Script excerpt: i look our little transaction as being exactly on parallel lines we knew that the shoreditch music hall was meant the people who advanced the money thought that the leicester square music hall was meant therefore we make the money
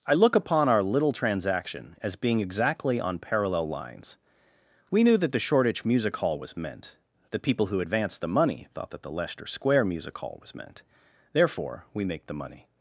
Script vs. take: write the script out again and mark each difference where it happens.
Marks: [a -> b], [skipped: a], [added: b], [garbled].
i look [added: upon] our little transaction as being exactly on parallel lines we knew that the shoreditch music hall was meant the people who advanced the money thought that the leicester square music hall was meant therefore we make the money